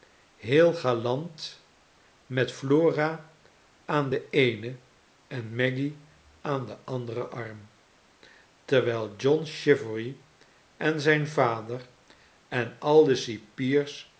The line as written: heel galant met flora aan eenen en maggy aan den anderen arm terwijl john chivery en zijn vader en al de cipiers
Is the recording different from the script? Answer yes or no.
yes